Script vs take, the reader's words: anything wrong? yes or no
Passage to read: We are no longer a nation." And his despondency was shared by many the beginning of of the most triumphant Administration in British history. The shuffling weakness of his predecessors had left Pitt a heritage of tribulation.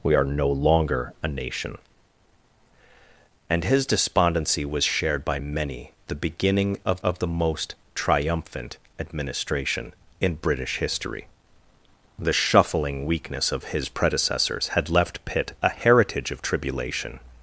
no